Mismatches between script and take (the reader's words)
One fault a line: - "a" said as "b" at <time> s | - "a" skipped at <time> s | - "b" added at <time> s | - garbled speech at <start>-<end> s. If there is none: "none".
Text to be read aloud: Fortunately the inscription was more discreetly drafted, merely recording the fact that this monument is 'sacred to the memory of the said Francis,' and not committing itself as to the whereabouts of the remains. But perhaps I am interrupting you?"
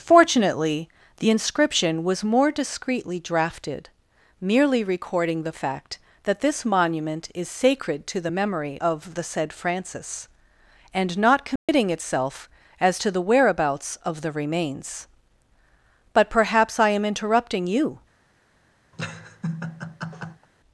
none